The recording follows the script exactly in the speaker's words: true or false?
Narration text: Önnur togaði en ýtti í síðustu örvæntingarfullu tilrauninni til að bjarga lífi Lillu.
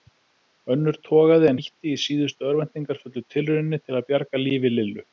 true